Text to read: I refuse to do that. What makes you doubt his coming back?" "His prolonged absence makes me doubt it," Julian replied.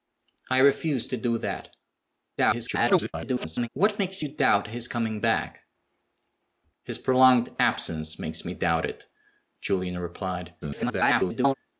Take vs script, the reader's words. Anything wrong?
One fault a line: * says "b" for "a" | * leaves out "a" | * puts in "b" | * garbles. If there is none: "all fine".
* garbles
* garbles